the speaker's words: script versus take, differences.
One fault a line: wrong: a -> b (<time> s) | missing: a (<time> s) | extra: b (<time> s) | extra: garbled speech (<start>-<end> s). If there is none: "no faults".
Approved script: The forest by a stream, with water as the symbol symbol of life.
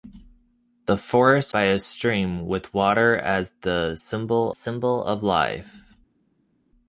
no faults